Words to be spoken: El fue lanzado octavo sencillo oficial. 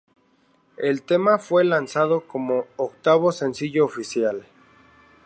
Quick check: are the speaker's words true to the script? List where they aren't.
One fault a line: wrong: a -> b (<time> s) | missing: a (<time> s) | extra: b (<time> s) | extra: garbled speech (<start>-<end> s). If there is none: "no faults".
extra: tema (1.0 s)
extra: como (2.2 s)